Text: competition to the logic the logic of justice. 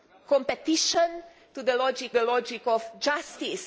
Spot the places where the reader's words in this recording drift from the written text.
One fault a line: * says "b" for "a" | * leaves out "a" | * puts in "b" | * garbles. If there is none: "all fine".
all fine